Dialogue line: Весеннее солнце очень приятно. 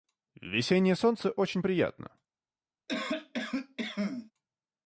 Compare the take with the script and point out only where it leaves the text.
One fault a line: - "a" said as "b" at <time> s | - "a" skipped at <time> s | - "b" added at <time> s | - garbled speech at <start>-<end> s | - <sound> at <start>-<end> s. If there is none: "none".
- cough at 2.9-4.3 s